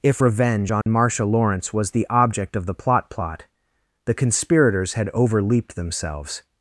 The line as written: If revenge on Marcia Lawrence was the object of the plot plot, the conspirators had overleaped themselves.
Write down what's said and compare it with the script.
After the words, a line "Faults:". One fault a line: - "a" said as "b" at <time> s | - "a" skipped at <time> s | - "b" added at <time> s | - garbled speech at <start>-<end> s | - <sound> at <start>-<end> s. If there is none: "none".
If revenge on Marcia Lawrence was the object of the plot plot, the conspirators had overleaped themselves.
Faults:
- dropout at 0.8-0.9 s